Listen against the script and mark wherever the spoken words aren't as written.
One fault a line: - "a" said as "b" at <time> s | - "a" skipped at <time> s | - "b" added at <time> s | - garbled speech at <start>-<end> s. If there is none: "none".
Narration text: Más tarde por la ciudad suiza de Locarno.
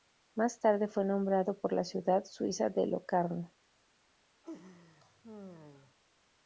- "fue nombrado" added at 0.9 s